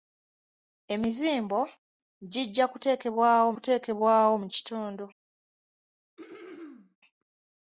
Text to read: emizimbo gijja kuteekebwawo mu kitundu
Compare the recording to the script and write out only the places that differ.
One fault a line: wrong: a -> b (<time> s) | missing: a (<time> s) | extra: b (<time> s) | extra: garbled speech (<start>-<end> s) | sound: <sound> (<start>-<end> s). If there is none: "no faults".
extra: kuteekebwawo (3.5 s)
sound: throat clearing (6.2-7.0 s)